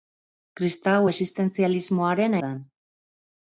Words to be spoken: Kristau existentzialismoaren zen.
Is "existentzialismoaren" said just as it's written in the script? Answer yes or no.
yes